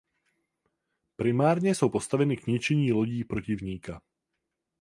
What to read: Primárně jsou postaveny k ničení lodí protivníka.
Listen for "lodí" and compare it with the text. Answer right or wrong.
right